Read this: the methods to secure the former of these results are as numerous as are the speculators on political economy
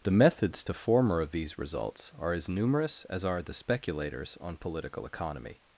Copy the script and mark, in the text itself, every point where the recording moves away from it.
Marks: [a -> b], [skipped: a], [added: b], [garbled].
the methods to [skipped: secure the] former of these results are as numerous as are the speculators on political economy